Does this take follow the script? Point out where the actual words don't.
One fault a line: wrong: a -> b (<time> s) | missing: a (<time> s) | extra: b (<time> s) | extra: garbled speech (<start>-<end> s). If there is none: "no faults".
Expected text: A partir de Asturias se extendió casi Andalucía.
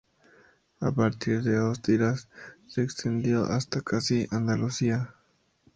extra: hasta (3.4 s)